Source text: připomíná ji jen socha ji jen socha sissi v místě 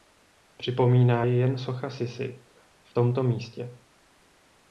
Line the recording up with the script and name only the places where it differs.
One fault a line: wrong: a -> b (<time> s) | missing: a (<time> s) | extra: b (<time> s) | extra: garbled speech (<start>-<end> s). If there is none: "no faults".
missing: ji jen socha (1.9 s)
extra: tomto (2.9 s)